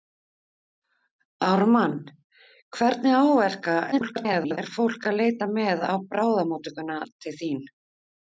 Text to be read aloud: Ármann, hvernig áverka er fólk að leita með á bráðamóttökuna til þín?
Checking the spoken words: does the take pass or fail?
fail